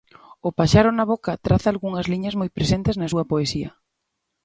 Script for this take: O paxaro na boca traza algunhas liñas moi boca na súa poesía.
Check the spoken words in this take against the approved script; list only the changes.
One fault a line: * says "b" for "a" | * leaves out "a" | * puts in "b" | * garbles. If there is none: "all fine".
* says "presentes" for "boca"